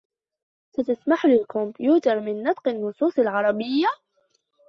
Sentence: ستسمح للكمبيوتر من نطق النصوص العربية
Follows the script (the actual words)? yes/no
yes